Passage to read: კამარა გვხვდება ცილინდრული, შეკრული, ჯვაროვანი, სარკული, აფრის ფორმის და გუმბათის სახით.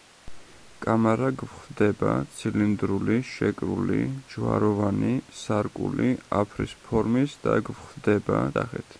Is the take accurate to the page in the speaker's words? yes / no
no